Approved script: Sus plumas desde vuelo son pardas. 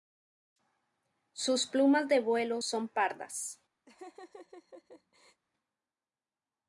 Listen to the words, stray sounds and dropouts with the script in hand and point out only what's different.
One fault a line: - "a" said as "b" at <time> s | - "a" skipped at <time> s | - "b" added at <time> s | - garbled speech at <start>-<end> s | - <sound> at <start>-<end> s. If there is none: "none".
- "desde" said as "de" at 2.1 s
- laugh at 3.9-5.4 s